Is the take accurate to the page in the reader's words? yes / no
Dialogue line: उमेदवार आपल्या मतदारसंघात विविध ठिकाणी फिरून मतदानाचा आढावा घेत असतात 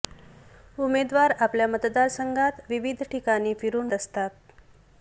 no